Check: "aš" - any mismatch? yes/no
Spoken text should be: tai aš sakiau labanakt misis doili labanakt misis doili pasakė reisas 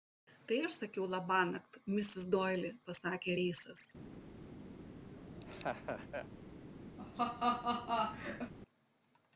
no